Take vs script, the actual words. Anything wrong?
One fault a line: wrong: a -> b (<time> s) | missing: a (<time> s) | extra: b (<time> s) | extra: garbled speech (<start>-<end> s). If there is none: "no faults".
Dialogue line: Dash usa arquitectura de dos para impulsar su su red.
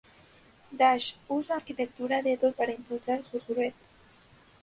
no faults